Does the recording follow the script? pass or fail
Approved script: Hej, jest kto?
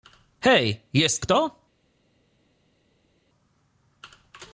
pass